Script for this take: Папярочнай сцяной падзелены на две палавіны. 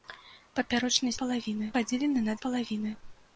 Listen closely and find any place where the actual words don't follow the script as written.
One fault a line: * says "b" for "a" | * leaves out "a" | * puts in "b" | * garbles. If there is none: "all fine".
* says "палавіны" for "сцяной"
* leaves out "две"